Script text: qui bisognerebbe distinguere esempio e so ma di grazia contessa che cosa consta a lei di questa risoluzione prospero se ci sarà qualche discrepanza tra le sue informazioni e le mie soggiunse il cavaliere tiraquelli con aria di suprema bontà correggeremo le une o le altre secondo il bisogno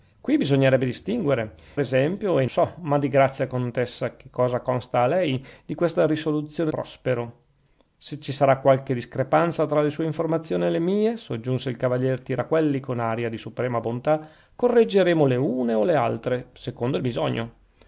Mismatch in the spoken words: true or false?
false